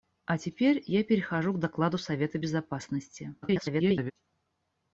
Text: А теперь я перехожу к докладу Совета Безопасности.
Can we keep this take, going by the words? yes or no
no